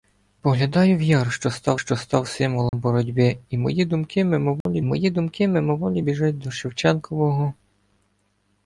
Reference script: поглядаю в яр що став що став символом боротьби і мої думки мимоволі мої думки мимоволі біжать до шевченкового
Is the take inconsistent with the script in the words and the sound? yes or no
yes